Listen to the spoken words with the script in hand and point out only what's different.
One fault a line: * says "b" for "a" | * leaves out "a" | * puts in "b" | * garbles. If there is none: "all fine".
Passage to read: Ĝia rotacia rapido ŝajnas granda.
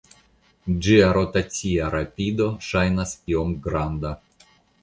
* puts in "iom"